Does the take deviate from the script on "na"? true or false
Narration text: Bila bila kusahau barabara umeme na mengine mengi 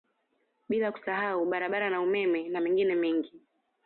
false